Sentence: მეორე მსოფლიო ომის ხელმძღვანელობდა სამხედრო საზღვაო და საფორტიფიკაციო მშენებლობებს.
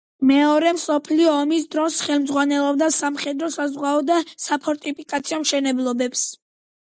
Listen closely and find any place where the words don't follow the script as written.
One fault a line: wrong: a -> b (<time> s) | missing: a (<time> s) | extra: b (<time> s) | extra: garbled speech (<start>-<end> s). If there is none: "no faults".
extra: დროს (1.8 s)